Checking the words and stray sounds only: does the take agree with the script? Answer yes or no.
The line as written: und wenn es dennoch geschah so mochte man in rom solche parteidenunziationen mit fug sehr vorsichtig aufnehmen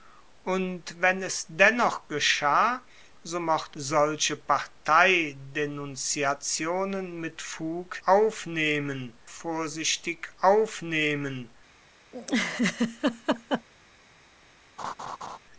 no